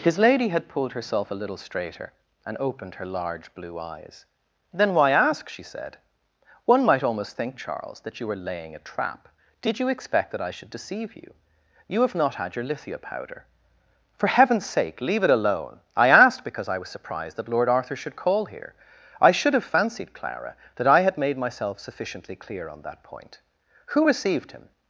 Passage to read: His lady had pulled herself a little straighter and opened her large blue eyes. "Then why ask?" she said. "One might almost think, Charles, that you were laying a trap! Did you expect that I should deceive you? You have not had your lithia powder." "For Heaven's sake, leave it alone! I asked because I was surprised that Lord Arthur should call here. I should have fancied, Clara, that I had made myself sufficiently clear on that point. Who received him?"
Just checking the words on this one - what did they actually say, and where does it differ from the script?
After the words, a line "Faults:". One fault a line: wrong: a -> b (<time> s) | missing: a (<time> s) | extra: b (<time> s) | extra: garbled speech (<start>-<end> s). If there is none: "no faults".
His lady had pulled herself a little straighter and opened her large blue eyes. "Then why ask?" she said. "One might almost think, Charles, that you were laying a trap! Did you expect that I should deceive you? You have not had your lithia powder." "For Heaven's sake, leave it alone! I asked because I was surprised that Lord Arthur should call here. I should have fancied, Clara, that I had made myself sufficiently clear on that point. Who received him?"
Faults:
no faults